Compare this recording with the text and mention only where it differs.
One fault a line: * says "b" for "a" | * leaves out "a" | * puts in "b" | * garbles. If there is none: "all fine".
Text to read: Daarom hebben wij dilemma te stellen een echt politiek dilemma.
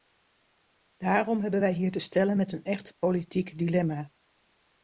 * says "hier" for "dilemma"
* puts in "met"